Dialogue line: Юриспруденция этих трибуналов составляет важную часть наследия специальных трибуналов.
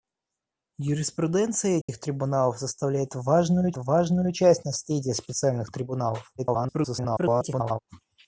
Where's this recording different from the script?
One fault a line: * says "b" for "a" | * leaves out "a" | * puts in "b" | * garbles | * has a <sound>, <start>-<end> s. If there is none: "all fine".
* has a dropout, 1.8-1.9 s
* puts in "важную"
* garbles